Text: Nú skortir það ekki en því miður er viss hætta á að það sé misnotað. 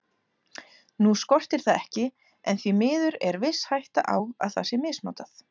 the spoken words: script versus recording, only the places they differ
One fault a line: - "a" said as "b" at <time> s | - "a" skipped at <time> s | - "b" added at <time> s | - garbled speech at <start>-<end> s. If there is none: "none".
none